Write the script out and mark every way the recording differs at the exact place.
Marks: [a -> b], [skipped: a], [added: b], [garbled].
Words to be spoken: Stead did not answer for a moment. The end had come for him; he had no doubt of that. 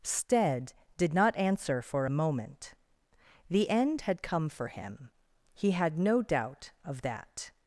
Stead did not answer for a moment. The end had come for him; he had no doubt of that.